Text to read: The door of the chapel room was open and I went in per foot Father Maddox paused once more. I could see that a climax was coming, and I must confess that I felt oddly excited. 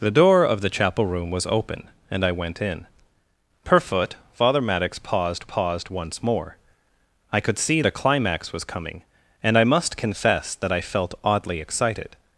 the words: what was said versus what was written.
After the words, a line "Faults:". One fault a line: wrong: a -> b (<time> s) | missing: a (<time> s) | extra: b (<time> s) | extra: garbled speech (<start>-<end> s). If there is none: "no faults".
The door of the chapel room was open and I went in per foot Father Maddox paused paused once more. I could see a climax was coming, and I must confess that I felt oddly excited.
Faults:
extra: paused (5.4 s)
missing: that (7.8 s)